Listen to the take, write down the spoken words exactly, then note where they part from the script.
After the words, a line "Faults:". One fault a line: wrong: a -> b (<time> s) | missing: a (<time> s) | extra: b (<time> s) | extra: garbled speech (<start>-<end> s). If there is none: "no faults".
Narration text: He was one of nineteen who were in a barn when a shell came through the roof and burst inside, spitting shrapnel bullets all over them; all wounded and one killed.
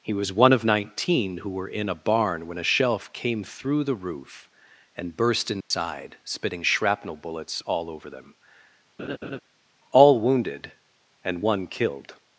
He was one of nineteen who were in a barn when a shelf came through the roof and burst inside, spitting shrapnel bullets all over them; all wounded and one killed.
Faults:
wrong: shell -> shelf (2.6 s)